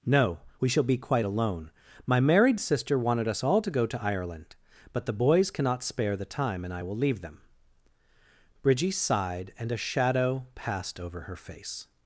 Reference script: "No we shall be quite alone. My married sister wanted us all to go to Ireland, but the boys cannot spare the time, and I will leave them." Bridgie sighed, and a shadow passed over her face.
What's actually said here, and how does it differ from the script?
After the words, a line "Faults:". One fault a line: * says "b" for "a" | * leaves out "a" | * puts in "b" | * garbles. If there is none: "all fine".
"No we shall be quite alone. My married sister wanted us all to go to Ireland, but the boys cannot spare the time, and I will leave them." Bridgie sighed, and a shadow passed over her face.
Faults:
all fine